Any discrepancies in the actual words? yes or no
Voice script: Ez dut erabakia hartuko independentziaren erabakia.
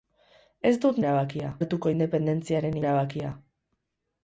no